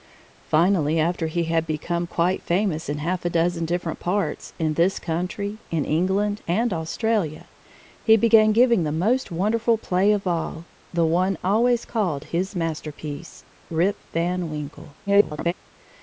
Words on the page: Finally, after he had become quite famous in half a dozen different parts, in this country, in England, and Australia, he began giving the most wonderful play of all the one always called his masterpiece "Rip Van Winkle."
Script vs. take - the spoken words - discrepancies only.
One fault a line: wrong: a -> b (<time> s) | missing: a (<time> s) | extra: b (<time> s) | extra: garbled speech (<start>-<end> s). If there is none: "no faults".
extra: garbled speech (15.1-15.5 s)